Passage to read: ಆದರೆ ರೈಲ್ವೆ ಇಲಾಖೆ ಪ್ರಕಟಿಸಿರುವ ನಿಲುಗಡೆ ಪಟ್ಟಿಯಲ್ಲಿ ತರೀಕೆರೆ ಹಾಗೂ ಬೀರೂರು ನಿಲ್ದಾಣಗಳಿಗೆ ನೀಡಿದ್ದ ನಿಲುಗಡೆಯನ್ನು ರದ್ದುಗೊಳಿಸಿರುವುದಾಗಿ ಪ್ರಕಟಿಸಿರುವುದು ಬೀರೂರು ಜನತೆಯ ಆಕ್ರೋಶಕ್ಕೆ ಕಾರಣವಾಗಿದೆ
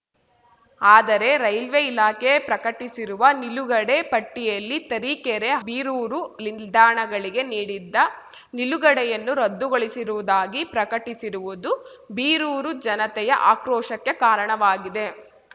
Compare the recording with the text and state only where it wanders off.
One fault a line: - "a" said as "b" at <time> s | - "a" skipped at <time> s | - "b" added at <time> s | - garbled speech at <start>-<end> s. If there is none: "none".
- "ಹಾಗೂ" skipped at 5.5 s